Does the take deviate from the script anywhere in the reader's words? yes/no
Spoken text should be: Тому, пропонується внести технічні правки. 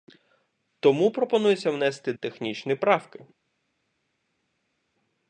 no